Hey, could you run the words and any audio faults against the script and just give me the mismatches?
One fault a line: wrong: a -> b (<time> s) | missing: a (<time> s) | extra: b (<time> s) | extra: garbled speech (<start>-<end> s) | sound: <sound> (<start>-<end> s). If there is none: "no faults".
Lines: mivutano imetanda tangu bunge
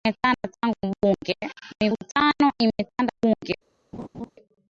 missing: tangu (3.1 s)
sound: laugh (3.9-4.3 s)